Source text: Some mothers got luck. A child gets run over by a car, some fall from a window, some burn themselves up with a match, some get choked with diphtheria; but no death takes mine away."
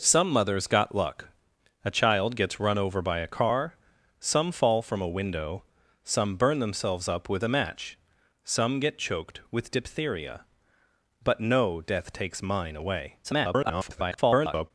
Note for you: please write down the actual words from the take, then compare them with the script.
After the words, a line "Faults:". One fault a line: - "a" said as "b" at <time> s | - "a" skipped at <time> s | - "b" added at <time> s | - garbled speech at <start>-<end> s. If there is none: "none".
Some mothers got luck. A child gets run over by a car, some fall from a window, some burn themselves up with a match, some get choked with diphtheria; but no death takes mine away." [garbled]
Faults:
- garbled speech at 13.2-14.7 s